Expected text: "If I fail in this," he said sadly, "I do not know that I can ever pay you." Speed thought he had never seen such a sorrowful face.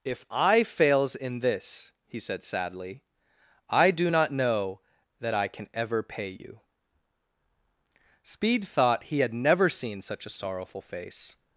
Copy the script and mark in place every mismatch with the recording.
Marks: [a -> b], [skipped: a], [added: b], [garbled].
"If I [fail -> fails] in this," he said sadly, "I do not know that I can ever pay you." Speed thought he had never seen such a sorrowful face.